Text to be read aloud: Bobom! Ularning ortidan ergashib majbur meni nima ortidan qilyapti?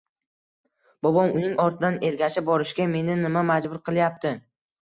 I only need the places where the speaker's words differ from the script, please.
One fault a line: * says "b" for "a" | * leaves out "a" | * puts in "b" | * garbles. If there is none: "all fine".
* says "Uning" for "Ularning"
* says "borishga" for "majbur"
* says "majbur" for "ortidan"